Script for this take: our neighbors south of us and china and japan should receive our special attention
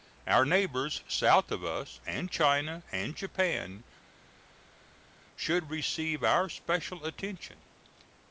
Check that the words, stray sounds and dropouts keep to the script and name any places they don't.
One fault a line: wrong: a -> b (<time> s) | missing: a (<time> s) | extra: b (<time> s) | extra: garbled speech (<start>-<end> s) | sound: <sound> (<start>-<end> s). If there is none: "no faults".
no faults